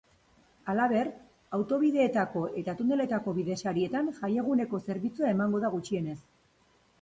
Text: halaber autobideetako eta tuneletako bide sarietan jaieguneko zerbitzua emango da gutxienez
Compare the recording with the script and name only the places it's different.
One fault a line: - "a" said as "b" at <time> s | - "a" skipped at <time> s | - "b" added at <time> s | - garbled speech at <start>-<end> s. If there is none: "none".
none